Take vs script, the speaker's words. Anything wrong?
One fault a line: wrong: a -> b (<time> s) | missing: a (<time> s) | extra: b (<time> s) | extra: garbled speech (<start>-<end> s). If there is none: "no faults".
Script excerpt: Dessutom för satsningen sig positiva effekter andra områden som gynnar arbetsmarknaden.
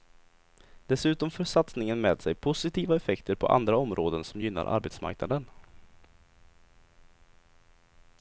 extra: med (2.0 s)
extra: på (3.4 s)